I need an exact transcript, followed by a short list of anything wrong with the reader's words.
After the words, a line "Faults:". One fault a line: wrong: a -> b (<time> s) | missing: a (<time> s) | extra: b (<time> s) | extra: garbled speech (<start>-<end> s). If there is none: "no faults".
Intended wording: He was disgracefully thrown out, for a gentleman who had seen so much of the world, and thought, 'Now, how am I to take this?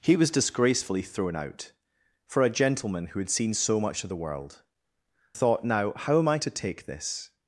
He was disgracefully thrown out, for a gentleman who had seen so much of the world, thought, 'Now, how am I to take this?
Faults:
missing: and (4.6 s)